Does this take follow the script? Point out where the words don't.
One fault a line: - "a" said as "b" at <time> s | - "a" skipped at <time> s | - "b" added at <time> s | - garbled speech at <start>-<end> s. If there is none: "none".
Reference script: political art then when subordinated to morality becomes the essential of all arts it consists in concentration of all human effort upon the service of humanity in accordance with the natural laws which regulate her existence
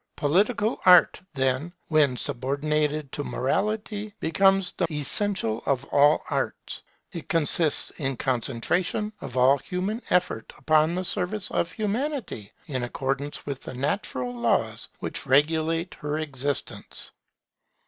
none